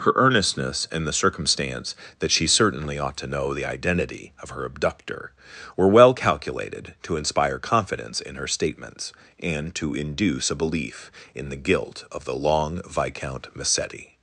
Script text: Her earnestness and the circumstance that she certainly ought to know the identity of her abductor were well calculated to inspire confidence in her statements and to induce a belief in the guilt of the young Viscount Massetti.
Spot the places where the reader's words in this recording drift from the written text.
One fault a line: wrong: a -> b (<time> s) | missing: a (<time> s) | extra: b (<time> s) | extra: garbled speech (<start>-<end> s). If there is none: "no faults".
wrong: young -> long (12.3 s)